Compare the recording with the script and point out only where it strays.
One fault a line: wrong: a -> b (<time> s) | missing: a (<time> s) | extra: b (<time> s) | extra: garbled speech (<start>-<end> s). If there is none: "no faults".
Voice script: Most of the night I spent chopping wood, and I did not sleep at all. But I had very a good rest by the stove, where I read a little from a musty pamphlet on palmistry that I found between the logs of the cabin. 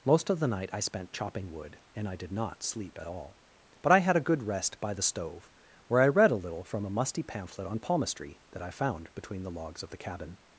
missing: very (4.2 s)